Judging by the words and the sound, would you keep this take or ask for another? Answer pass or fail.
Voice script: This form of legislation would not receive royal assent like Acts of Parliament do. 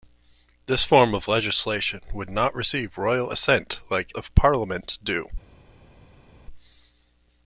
fail